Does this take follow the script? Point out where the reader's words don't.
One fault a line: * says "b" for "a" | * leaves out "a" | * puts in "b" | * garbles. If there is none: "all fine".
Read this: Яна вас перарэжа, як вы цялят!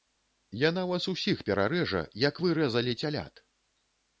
* puts in "усіх"
* puts in "рэзалі"